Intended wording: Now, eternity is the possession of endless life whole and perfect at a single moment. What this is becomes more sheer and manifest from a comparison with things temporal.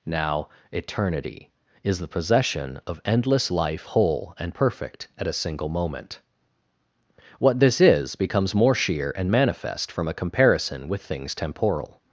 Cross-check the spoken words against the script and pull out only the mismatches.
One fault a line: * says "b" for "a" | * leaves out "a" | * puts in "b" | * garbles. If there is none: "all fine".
all fine